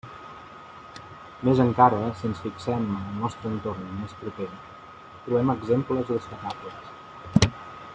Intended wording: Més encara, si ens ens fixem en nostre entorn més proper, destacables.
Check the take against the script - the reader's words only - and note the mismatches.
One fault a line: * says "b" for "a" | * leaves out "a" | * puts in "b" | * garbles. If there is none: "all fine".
* leaves out "ens"
* puts in "el"
* puts in "trobem exemples"